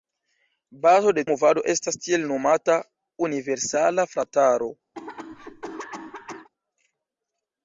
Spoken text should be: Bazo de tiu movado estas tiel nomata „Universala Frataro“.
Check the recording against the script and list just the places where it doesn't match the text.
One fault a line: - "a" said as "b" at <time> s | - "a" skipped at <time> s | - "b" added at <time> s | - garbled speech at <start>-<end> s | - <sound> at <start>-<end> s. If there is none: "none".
- "tiu" skipped at 1.2 s
- cough at 4.9-6.5 s